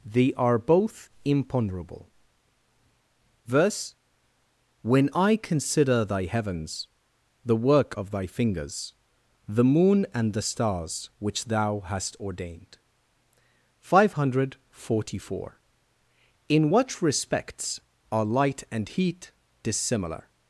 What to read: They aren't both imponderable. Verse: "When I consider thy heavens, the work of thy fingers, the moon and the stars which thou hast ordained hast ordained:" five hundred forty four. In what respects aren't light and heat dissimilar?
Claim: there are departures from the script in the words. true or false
true